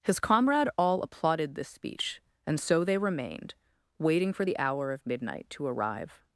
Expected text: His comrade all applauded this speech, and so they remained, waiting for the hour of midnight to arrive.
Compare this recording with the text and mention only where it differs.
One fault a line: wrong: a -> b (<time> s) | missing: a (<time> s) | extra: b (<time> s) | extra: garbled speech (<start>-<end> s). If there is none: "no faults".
no faults